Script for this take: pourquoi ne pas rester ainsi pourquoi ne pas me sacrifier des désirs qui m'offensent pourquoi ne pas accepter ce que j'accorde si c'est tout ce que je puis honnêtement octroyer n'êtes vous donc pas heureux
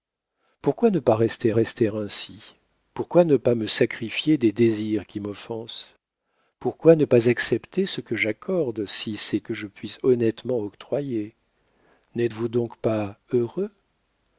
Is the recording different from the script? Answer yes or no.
yes